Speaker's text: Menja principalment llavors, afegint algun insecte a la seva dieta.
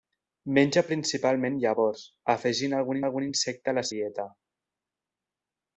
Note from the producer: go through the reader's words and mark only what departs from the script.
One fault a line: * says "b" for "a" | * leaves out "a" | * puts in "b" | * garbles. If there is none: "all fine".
* puts in "algun"
* leaves out "seva"